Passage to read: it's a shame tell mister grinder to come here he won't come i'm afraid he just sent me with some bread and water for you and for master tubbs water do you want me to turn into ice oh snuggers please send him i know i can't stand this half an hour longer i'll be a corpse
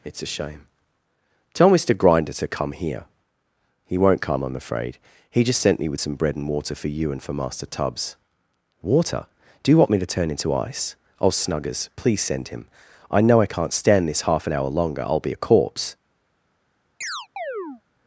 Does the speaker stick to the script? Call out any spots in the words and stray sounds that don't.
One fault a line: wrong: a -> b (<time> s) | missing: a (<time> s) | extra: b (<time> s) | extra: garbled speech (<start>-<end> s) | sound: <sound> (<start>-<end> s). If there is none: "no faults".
sound: chirp (17.0-17.8 s)